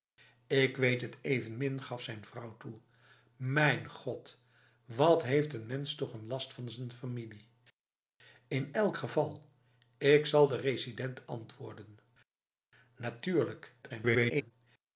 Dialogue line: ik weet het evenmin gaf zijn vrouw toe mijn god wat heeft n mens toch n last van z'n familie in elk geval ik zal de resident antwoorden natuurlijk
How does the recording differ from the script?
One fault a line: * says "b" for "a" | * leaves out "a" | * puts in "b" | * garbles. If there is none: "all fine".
* garbles